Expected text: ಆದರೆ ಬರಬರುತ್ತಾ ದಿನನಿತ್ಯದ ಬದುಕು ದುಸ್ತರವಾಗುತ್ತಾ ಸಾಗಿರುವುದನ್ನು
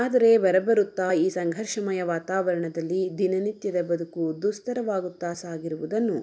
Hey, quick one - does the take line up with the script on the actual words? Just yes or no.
no